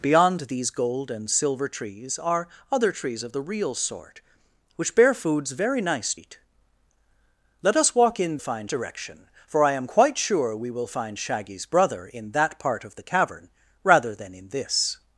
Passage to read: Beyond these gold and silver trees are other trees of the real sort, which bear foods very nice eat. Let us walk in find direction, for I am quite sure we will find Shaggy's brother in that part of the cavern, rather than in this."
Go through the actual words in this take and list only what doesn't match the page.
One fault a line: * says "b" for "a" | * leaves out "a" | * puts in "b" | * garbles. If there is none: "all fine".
all fine